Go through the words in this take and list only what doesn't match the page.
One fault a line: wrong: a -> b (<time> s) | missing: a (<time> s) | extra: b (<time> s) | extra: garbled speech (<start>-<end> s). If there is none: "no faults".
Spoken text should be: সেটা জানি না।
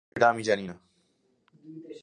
extra: আমি (0.3 s)